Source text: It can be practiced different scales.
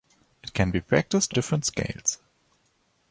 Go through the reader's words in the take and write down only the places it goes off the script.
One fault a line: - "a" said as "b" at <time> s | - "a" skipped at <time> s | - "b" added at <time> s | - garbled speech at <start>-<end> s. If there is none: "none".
none